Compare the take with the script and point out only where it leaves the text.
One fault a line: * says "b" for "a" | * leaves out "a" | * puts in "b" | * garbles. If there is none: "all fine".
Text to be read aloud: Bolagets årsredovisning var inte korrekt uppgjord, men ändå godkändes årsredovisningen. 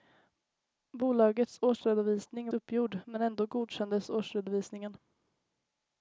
* leaves out "var inte korrekt"